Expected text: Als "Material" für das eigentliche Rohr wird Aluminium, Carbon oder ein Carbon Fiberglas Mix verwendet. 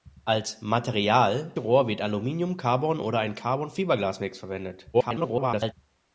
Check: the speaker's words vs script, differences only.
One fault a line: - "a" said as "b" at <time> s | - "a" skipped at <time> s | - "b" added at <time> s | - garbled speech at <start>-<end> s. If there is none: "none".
- "für das eigentliche" skipped at 1.5 s
- garbled speech at 4.9-5.7 s